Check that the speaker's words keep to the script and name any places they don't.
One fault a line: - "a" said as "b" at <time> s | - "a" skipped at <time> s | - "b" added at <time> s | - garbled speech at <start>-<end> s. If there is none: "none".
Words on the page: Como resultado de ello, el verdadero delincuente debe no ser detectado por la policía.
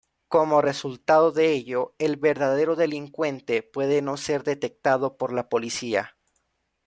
- "debe" said as "puede" at 3.6 s